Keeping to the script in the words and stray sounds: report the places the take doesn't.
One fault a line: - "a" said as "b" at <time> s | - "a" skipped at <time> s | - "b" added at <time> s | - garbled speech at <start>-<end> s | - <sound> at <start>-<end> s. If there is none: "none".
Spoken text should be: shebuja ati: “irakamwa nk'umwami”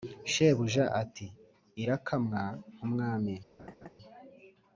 - laugh at 3.6-3.9 s